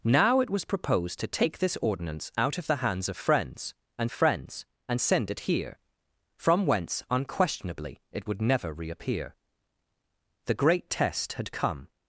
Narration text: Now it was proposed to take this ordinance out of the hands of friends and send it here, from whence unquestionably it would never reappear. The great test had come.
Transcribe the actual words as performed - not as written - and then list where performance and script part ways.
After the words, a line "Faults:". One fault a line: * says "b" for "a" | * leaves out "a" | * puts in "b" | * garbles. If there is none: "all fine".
Now it was proposed to take this ordinance out of the hands of friends and friends and send it here, from whence unquestionably it would never reappear. The great test had come.
Faults:
* puts in "friends and"